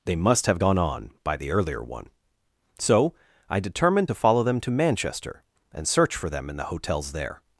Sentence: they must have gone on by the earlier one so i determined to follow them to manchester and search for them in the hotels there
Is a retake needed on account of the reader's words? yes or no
no